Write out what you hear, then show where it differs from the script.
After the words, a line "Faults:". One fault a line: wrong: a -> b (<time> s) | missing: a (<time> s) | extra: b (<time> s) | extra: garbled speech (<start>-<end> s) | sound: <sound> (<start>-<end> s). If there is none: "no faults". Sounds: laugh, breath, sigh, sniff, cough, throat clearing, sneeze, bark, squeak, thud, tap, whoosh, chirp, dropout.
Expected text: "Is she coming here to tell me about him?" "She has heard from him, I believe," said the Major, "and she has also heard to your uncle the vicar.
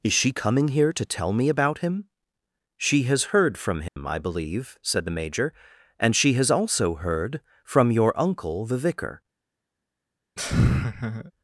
"Is she coming here to tell me about him?" "She has heard from him, I believe," said the Major, "and she has also heard from your uncle the vicar.
Faults:
sound: dropout (3.9-4.0 s)
wrong: to -> from (7.6 s)
sound: laugh (10.4-11.3 s)